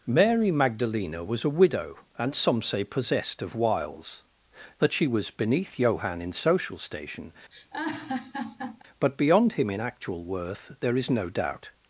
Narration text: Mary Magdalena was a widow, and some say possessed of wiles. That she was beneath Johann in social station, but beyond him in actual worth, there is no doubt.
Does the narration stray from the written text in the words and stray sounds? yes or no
yes